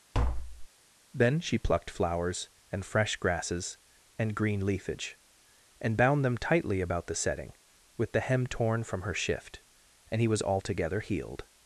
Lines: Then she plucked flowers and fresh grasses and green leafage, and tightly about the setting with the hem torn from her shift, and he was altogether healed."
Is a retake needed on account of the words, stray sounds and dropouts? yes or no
yes